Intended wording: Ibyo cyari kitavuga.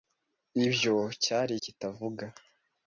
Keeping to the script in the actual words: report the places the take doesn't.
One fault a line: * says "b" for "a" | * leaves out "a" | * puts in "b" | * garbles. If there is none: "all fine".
all fine